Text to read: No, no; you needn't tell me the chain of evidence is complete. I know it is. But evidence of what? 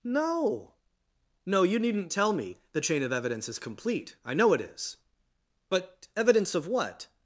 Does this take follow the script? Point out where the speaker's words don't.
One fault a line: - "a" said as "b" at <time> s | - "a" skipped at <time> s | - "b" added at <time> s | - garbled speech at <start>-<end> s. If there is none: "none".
none